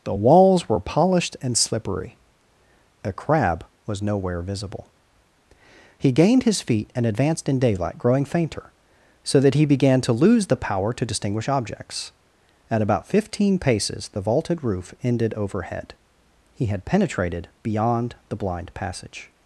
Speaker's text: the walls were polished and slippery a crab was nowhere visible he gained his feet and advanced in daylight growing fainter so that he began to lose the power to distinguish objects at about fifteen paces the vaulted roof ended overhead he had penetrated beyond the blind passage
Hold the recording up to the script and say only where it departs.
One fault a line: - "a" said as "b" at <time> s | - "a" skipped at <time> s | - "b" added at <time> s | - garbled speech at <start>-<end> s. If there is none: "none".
none